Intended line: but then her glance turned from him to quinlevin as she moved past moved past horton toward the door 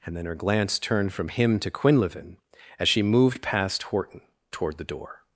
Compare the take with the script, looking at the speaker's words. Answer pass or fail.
fail